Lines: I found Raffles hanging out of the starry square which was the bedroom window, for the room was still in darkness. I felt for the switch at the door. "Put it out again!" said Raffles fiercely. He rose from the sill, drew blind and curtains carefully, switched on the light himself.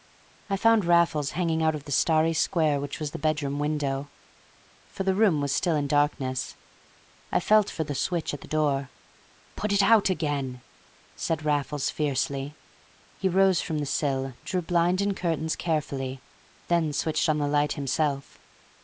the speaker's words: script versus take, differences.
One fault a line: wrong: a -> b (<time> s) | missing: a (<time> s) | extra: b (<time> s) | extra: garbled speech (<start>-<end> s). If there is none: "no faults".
extra: then (16.6 s)